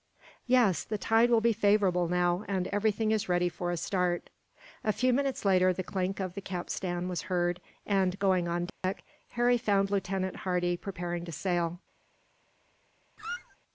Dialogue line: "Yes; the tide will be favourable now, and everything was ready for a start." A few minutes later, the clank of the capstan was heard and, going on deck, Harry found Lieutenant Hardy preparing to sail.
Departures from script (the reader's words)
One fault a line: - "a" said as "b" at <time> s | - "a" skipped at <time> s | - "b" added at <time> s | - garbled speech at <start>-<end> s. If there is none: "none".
- "was" said as "is" at 3.1 s